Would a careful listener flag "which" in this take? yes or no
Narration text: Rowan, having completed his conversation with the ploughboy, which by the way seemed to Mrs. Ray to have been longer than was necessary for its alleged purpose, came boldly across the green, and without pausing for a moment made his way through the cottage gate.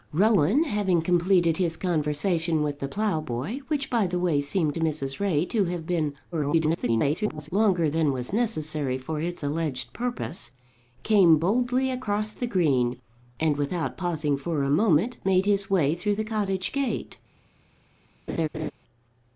no